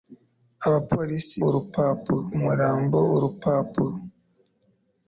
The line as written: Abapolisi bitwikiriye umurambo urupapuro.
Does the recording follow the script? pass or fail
fail